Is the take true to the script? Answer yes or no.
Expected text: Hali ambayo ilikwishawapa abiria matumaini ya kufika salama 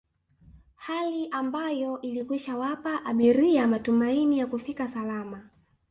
yes